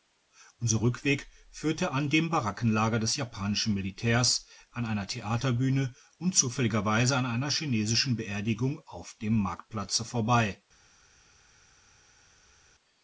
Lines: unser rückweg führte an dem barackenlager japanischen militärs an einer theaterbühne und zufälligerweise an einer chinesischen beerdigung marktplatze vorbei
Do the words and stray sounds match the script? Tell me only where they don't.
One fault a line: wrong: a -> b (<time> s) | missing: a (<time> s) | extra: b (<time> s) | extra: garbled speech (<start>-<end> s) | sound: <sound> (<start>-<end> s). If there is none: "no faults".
extra: des (3.0 s)
extra: auf dem (8.9 s)